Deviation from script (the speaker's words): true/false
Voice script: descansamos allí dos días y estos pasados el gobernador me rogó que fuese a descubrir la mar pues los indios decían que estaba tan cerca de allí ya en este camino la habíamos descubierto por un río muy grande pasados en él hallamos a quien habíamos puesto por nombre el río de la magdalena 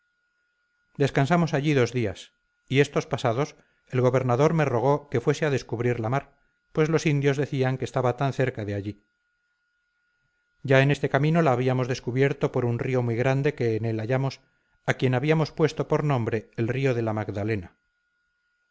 true